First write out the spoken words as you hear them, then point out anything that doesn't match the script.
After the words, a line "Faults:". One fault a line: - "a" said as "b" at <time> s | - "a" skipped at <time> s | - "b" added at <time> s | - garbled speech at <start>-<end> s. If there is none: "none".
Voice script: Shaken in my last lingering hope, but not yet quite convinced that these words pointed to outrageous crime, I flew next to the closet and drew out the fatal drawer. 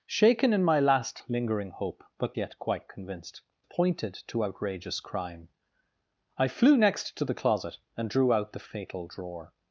Shaken in my last lingering hope, but yet quite convinced pointed to outrageous crime, I flew next to the closet and drew out the fatal drawer.
Faults:
- "not" skipped at 2.4 s
- "that these words" skipped at 3.4 s